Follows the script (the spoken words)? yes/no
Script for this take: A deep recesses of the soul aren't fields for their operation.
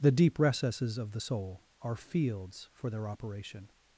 no